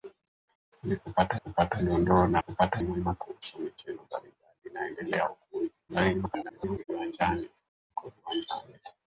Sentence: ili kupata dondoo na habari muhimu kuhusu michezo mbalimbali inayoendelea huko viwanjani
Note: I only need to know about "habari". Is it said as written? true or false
false